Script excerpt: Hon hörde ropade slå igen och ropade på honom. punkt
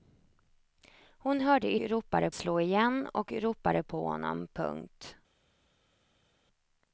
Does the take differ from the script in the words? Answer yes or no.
no